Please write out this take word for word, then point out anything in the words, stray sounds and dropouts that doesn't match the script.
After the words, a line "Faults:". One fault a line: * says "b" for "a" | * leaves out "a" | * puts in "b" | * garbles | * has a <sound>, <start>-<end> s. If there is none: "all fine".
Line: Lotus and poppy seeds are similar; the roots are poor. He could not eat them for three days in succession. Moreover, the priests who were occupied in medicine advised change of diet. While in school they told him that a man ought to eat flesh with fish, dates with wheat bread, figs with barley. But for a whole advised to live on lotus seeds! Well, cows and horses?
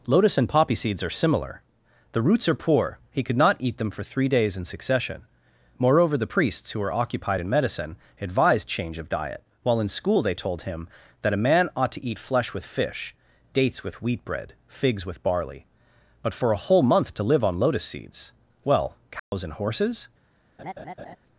Lotus and poppy seeds are similar; the roots are poor. He could not eat them for three days in succession. Moreover, the priests who were occupied in medicine advised change of diet. While in school they told him that a man ought to eat flesh with fish, dates with wheat bread, figs with barley. But for a whole month to live on lotus seeds! Well, cows and horses?
Faults:
* says "month" for "advised"
* has a dropout, 19.2-19.3 s
* has a laugh, 20.6-21.2 s